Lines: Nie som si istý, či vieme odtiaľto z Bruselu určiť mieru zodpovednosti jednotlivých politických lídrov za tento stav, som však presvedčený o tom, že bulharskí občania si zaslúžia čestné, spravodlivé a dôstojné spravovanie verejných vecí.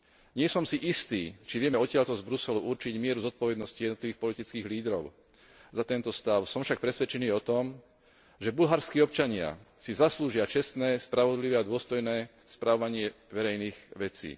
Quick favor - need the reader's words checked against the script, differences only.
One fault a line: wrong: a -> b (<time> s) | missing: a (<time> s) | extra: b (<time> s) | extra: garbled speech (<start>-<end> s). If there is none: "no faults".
no faults